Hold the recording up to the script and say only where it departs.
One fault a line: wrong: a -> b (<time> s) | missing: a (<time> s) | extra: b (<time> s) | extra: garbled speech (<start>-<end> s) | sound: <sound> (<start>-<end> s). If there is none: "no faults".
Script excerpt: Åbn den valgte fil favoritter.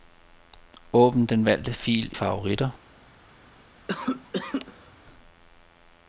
sound: cough (3.9-4.9 s)